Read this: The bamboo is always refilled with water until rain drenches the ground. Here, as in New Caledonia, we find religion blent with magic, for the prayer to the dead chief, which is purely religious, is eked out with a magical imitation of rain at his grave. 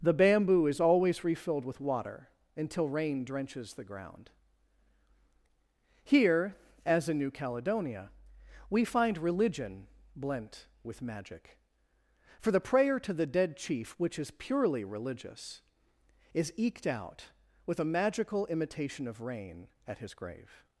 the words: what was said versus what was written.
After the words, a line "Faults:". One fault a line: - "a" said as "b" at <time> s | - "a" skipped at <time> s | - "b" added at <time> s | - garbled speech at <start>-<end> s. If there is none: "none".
The bamboo is always refilled with water until rain drenches the ground. Here, as in New Caledonia, we find religion blent with magic, for the prayer to the dead chief, which is purely religious, is eked out with a magical imitation of rain at his grave.
Faults:
none